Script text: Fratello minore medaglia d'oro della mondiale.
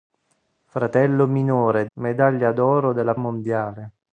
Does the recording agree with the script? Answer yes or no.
yes